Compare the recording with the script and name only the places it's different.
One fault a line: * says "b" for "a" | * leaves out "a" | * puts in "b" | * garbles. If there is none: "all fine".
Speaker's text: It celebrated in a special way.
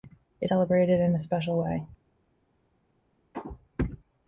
all fine